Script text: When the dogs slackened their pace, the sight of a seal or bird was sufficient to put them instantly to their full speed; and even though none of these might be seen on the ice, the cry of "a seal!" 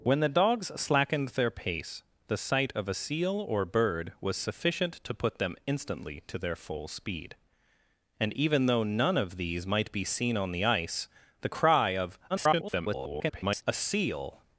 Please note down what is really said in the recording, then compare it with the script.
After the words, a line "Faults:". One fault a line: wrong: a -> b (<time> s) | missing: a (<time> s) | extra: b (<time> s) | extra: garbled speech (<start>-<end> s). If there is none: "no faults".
When the dogs slackened their pace, the sight of a seal or bird was sufficient to put them instantly to their full speed; and even though none of these might be seen on the ice, the cry of [garbled] "a seal!"
Faults:
extra: garbled speech (12.3-13.6 s)